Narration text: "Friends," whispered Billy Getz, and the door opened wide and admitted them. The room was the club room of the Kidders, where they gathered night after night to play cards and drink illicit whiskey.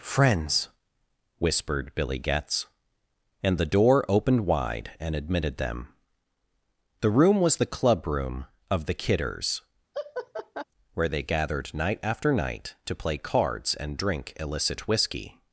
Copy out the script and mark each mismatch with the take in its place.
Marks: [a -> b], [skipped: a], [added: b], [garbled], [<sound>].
"Friends," whispered Billy Getz, and the door opened wide and admitted them. The room was the club room of the Kidders, [laugh] where they gathered night after night to play cards and drink illicit whiskey.